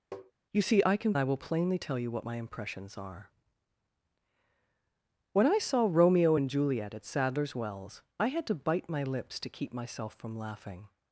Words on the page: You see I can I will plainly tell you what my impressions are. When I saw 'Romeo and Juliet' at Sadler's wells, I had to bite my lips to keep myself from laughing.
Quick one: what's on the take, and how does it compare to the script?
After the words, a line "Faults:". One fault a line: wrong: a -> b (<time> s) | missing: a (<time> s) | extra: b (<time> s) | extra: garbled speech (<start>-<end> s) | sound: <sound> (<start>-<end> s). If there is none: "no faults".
You see I can I will plainly tell you what my impressions are. When I saw 'Romeo and Juliet' at Sadler's wells, I had to bite my lips to keep myself from laughing.
Faults:
sound: tap (0.1-0.3 s)